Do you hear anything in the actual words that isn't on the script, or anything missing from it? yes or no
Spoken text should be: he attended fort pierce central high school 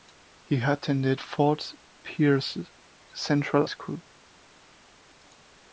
yes